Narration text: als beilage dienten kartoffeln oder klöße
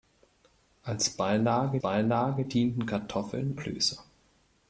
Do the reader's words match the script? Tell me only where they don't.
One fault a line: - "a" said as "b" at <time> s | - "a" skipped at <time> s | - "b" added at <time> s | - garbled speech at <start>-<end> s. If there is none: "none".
- "beilage" added at 1.8 s
- "oder" skipped at 3.6 s